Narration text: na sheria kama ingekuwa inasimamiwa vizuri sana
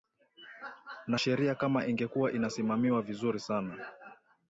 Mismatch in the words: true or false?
false